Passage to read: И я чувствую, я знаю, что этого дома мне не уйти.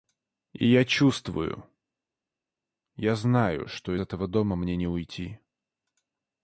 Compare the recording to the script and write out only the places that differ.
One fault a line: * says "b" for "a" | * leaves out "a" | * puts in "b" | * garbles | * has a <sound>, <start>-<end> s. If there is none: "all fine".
all fine